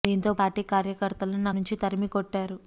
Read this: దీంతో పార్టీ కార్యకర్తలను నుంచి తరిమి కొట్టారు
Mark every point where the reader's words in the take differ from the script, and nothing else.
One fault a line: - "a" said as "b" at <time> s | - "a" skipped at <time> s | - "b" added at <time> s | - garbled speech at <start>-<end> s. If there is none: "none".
none